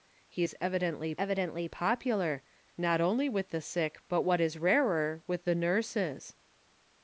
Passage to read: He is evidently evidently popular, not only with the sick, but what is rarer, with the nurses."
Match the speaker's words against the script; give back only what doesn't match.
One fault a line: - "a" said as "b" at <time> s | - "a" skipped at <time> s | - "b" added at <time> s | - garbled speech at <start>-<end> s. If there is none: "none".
none